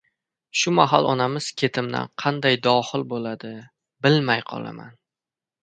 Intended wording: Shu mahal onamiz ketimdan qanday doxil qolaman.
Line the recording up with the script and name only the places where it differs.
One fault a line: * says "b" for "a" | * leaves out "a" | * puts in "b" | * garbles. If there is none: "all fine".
* puts in "bo‘ladi bilmay"